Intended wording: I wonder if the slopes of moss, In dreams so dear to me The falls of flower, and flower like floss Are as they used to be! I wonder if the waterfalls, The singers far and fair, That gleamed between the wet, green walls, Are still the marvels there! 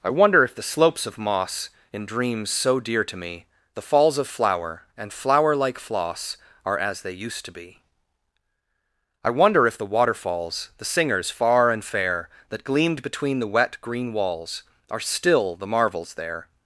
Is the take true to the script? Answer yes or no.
yes